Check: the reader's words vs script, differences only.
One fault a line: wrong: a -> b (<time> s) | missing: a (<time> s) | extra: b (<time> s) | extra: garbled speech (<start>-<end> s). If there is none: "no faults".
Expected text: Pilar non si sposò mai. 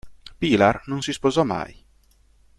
no faults